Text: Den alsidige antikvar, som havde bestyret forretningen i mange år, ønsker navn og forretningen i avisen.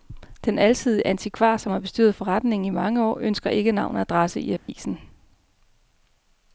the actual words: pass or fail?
fail